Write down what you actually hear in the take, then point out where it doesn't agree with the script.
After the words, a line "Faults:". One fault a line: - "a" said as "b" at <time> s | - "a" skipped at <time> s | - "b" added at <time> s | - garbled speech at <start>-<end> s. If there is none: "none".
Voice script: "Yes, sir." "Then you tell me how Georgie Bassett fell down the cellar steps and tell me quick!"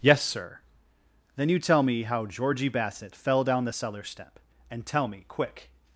"Yes, sir." "Then you tell me how Georgie Bassett fell down the cellar step and tell me quick!"
Faults:
- "steps" said as "step" at 4.0 s